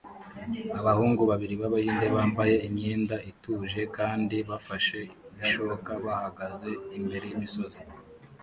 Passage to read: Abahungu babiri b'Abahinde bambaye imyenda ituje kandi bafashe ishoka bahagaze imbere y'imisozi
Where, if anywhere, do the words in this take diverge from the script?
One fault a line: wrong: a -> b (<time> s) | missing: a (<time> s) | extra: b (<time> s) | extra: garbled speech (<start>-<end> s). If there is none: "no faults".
no faults